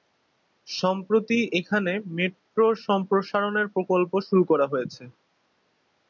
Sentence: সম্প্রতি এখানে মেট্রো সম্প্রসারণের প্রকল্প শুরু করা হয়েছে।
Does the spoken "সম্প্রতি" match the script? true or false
true